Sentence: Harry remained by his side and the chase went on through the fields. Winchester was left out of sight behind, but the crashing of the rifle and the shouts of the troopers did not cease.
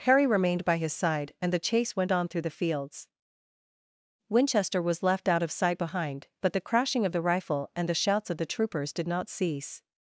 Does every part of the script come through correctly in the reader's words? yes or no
yes